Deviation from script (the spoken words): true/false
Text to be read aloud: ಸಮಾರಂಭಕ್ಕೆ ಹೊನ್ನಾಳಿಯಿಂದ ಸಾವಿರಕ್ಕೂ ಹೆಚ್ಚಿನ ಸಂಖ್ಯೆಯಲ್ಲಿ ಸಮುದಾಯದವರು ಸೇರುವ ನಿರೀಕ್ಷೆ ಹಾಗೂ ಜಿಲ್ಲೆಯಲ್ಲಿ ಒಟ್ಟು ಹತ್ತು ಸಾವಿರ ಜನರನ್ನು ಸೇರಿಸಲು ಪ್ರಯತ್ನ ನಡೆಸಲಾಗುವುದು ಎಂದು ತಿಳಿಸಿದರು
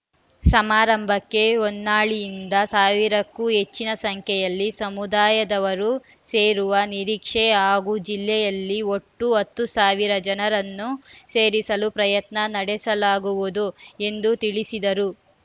false